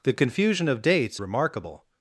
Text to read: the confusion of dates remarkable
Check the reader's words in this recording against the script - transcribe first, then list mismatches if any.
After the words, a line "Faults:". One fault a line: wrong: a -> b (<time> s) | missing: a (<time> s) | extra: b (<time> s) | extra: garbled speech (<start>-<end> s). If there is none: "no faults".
the confusion of dates remarkable
Faults:
no faults